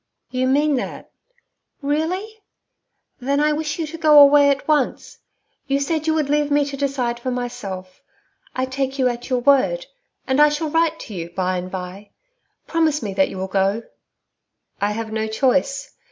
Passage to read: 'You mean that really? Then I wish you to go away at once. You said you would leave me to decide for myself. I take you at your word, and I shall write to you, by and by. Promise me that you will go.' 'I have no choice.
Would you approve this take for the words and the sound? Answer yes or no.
yes